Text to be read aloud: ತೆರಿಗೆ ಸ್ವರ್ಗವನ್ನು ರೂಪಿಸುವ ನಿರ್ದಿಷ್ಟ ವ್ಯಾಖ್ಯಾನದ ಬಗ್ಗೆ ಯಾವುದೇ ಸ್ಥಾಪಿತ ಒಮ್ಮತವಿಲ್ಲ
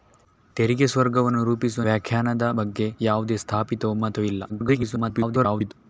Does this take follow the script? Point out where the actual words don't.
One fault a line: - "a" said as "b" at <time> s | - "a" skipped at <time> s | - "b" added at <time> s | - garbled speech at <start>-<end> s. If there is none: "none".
- "ನಿರ್ದಿಷ್ಟ" skipped at 1.8 s
- garbled speech at 4.5-5.7 s